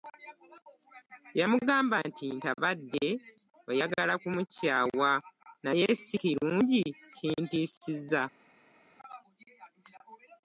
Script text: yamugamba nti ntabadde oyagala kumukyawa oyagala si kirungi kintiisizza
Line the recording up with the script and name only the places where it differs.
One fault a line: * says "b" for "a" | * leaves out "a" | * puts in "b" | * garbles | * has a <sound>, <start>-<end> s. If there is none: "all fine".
* says "naye" for "oyagala"